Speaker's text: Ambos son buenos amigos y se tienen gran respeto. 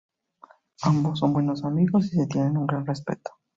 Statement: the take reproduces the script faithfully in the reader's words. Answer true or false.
false